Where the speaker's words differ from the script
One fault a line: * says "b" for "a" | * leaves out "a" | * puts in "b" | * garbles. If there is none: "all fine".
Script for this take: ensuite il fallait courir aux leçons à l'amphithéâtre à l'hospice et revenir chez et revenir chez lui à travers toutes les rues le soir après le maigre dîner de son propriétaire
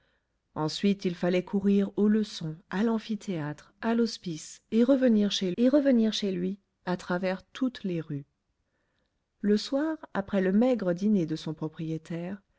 all fine